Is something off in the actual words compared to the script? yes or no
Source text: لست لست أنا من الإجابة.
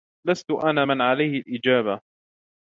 yes